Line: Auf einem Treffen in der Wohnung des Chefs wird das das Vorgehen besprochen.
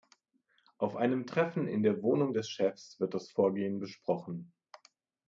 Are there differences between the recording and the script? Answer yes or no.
yes